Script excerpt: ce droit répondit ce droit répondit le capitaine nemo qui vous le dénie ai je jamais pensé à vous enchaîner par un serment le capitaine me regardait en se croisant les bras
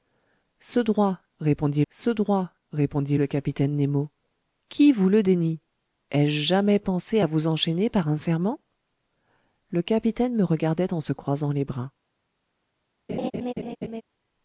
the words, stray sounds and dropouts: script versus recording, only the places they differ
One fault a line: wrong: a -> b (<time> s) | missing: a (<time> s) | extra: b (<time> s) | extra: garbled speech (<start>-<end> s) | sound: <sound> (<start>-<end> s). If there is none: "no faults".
sound: laugh (13.1-14.0 s)